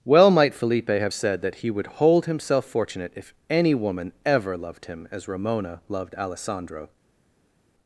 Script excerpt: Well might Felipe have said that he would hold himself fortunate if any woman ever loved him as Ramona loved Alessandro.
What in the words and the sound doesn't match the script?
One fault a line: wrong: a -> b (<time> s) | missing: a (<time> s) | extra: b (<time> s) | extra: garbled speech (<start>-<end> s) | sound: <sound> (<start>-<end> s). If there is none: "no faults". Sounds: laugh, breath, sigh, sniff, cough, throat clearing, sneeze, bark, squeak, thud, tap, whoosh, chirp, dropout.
no faults